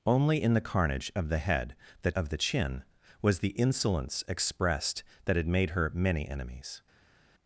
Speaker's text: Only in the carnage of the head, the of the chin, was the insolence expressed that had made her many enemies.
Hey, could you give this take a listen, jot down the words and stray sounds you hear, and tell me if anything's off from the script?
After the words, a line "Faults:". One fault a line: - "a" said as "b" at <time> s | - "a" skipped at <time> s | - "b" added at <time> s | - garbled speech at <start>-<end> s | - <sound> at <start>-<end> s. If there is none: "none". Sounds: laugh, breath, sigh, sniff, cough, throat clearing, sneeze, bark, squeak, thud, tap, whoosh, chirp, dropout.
Only in the carnage of the head, the of the chin, was the insolence expressed that had made her many enemies.
Faults:
none